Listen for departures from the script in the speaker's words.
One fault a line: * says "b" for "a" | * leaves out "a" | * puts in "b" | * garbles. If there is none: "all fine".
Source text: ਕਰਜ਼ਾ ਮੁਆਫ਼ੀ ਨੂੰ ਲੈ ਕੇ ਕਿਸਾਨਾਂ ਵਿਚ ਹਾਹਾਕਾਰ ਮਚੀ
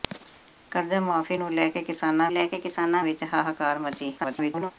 * puts in "ਲੈ ਕੇ ਕਿਸਾਨਾਂ"
* garbles